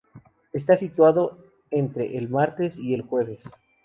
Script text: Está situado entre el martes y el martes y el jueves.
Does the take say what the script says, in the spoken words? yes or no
no